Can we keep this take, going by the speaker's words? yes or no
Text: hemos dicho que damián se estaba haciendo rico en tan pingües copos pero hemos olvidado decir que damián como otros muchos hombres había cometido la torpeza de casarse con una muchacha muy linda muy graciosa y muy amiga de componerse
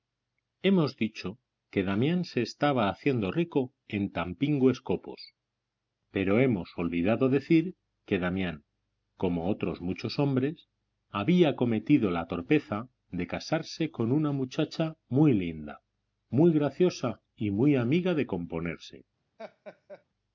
yes